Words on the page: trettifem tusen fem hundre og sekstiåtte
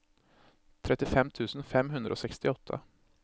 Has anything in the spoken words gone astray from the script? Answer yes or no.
no